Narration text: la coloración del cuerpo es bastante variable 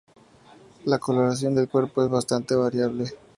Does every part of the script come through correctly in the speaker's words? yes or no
yes